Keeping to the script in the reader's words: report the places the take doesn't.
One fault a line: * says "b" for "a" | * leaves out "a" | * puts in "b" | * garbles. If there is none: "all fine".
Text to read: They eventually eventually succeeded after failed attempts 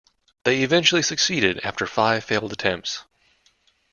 * leaves out "eventually"
* puts in "five"